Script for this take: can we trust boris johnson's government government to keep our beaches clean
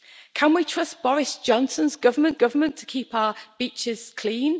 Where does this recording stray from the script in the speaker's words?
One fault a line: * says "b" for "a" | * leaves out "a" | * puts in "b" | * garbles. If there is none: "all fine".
all fine